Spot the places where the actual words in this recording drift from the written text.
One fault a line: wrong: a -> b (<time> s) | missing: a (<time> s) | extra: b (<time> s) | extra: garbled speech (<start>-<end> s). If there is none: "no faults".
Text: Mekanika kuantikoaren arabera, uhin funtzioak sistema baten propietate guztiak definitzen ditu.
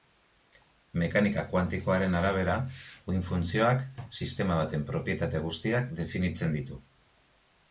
no faults